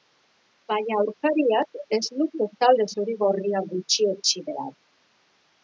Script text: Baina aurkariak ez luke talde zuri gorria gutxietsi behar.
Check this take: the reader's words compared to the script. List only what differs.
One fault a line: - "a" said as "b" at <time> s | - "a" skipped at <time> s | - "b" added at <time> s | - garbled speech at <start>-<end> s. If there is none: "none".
none